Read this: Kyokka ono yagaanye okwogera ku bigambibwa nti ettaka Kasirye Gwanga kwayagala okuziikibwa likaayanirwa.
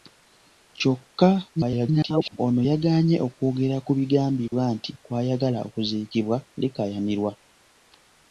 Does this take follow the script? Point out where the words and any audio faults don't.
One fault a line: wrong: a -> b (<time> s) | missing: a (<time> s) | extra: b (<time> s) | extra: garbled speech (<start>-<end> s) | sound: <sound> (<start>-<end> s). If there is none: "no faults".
extra: garbled speech (1.6-2.4 s)
sound: dropout (4.5-4.5 s)
missing: ettaka Kasirye Gwanga (4.9 s)